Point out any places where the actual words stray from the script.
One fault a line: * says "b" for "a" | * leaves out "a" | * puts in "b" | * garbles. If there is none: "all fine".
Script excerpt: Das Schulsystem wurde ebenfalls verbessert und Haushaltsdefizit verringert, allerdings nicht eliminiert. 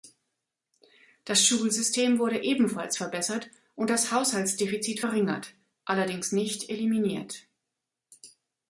* puts in "das"